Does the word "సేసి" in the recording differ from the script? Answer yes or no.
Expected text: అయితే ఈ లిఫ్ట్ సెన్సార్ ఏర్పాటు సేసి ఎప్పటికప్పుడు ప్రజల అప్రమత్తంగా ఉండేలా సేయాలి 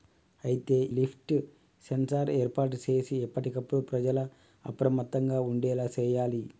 no